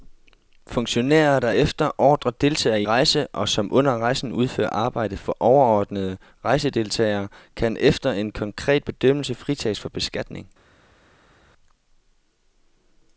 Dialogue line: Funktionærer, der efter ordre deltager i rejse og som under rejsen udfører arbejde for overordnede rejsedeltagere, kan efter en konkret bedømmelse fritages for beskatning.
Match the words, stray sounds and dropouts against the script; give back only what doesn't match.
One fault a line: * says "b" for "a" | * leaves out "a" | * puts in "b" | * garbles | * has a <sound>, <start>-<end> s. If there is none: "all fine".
all fine